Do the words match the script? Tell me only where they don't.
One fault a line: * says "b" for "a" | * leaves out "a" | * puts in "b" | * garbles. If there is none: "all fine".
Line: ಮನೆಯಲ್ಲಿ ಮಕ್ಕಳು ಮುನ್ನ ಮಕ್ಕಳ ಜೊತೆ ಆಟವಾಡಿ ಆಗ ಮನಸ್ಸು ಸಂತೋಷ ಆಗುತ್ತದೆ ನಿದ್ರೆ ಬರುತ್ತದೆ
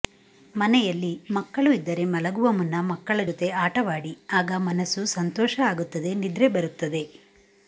* puts in "ಇದ್ದರೆ ಮಲಗುವ"